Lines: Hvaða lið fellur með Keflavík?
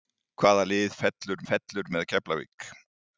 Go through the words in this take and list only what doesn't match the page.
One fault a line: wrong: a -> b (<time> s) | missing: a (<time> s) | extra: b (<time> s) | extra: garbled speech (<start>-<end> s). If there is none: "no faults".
extra: fellur (1.5 s)